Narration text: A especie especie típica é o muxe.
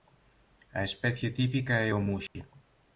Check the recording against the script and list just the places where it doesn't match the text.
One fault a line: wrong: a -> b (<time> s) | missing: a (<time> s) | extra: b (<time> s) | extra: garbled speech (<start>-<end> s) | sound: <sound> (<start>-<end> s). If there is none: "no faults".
missing: especie (1.3 s)
sound: dropout (2.3-2.4 s)